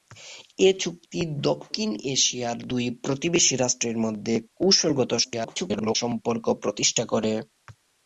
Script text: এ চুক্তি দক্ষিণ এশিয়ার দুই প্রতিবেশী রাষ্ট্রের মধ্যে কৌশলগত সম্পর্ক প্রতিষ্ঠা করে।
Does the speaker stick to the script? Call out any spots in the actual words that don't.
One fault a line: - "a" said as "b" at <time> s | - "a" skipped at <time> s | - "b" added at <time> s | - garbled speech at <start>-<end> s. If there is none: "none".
- garbled speech at 5.2-6.0 s